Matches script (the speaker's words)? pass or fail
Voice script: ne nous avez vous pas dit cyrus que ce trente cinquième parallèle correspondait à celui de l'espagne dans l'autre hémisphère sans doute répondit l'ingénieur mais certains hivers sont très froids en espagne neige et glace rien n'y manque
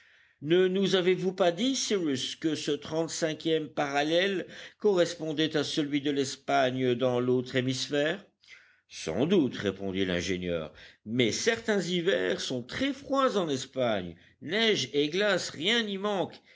pass